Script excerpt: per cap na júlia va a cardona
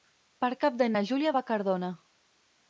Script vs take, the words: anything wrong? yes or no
yes